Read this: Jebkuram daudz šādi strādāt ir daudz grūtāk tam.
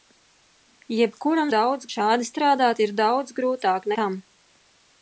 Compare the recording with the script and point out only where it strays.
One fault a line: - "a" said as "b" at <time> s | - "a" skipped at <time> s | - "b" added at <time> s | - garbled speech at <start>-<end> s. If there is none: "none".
none